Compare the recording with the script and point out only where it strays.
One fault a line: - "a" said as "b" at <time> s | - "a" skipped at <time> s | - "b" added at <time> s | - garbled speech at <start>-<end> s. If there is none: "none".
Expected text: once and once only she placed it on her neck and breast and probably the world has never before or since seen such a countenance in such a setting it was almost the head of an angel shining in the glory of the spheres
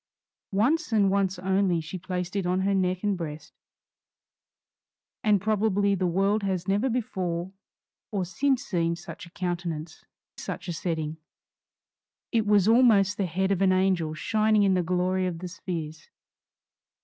- "in" skipped at 10.0 s